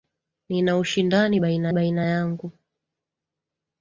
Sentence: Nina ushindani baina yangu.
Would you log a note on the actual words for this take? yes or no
yes